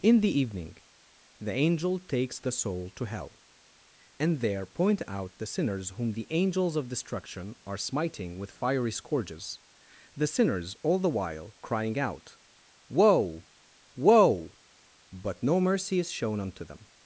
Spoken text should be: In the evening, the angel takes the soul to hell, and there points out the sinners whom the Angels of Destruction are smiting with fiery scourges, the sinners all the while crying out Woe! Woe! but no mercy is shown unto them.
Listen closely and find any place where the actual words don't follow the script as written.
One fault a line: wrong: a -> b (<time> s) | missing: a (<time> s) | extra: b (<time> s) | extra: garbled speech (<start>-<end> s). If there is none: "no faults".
wrong: points -> point (4.7 s)